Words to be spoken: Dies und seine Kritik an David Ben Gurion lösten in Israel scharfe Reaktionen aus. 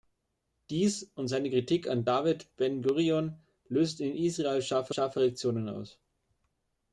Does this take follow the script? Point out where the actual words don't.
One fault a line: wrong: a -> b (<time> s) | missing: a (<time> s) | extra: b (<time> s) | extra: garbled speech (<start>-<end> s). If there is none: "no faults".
extra: scharfe (4.9 s)